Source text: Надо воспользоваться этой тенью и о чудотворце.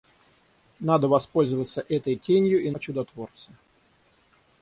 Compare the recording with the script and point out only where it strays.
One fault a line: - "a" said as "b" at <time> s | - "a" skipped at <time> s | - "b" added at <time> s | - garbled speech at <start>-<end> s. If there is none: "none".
none